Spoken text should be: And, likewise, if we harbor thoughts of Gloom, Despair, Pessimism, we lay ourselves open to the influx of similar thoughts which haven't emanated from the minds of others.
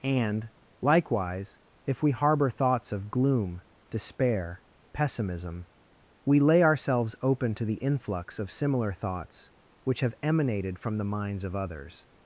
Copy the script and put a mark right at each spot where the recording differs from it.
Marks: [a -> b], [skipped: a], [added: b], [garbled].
And, likewise, if we harbor thoughts of Gloom, Despair, Pessimism, we lay ourselves open to the influx of similar thoughts which [haven't -> have] emanated from the minds of others.